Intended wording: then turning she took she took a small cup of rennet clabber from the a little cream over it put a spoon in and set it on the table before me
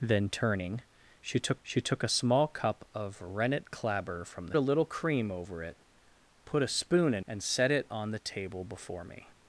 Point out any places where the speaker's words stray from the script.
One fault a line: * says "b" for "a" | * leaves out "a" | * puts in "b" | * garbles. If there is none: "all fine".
all fine